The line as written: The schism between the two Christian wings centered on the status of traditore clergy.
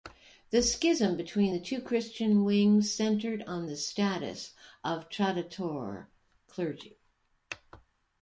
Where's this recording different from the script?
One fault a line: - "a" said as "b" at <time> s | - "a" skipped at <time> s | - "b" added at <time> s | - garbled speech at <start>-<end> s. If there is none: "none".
none